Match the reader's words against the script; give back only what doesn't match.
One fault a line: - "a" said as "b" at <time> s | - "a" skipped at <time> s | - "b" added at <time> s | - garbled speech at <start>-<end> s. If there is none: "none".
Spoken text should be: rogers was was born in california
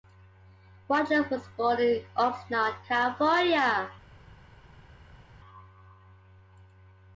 - "was" skipped at 1.4 s
- "oxnard" added at 2.1 s